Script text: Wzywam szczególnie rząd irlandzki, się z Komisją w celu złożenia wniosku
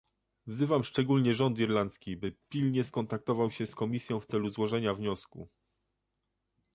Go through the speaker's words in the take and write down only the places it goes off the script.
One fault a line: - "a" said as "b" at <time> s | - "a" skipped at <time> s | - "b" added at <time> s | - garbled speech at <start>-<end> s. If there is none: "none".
- "by pilnie skontaktował" added at 2.2 s